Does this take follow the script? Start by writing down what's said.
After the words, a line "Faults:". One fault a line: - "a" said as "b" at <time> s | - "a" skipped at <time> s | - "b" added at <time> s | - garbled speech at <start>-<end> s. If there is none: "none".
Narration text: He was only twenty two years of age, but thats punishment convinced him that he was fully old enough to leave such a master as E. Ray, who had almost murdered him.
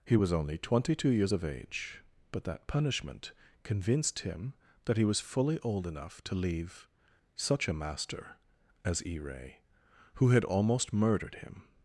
He was only twenty two years of age, but that punishment convinced him that he was fully old enough to leave such a master as E. Ray, who had almost murdered him.
Faults:
- "thats" said as "that" at 2.4 s